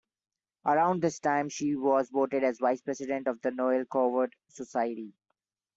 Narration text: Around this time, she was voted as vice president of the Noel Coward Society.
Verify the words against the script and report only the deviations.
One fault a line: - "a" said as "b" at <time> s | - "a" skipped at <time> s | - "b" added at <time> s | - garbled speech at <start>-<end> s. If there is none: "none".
none